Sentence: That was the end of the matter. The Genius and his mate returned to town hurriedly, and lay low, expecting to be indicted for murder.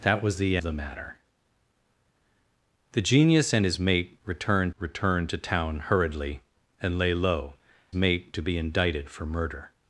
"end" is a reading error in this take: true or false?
true